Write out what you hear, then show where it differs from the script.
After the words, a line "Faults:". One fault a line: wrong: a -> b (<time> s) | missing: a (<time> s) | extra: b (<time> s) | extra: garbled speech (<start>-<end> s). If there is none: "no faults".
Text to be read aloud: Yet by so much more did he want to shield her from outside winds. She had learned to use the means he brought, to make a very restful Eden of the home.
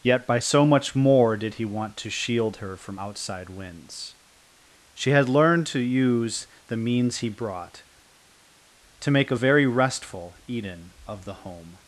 Yet by so much more did he want to shield her from outside winds. She had learned to use the means he brought, to make a very restful Eden of the home.
Faults:
no faults